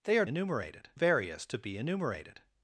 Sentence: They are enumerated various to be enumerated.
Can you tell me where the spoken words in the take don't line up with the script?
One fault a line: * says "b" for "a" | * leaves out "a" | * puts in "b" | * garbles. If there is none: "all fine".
all fine